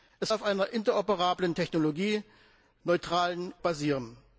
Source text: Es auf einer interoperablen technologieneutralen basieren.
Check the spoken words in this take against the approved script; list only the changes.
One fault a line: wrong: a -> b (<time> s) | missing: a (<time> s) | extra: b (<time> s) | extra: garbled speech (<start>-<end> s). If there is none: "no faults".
no faults